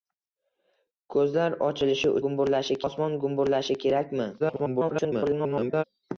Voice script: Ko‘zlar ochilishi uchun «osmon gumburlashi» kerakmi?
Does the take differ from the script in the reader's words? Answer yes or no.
yes